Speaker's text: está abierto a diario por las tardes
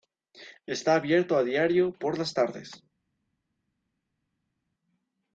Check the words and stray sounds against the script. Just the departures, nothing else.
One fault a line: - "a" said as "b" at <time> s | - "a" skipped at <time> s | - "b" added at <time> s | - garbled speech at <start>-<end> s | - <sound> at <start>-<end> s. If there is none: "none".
none